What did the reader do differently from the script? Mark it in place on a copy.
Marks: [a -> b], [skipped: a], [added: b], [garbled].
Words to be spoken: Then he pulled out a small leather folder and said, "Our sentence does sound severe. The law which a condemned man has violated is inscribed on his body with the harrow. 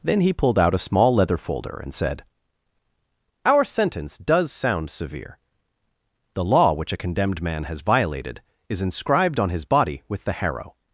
Then he pulled out a small leather folder and said, "Our sentence does sound severe. The law which a condemned man has violated is inscribed on his body with the harrow.